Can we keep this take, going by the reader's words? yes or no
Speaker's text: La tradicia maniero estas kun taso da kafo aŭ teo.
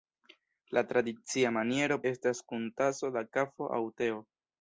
yes